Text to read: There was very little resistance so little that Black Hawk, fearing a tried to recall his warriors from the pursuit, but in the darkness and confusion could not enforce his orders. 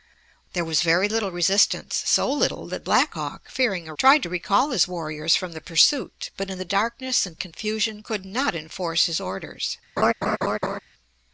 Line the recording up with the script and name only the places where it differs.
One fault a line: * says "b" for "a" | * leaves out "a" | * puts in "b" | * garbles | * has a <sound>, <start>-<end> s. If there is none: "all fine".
* has a laugh, 10.0-10.8 s